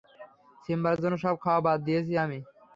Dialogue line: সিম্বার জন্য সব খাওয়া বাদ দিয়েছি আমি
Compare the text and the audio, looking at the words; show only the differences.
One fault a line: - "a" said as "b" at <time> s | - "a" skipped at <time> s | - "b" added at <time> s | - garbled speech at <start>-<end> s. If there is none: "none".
none